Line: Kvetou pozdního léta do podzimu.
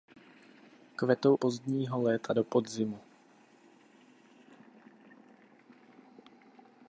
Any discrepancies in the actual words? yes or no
no